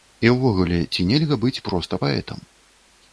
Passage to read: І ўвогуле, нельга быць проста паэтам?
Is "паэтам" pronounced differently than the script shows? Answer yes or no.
no